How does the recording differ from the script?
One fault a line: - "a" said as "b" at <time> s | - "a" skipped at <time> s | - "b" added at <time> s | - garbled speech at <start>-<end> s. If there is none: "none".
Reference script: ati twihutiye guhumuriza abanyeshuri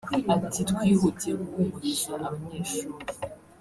none